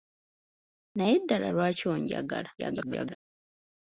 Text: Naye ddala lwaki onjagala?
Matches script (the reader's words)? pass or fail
fail